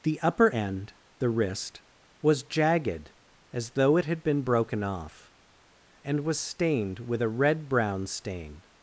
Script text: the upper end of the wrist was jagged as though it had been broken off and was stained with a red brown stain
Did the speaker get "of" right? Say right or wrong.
wrong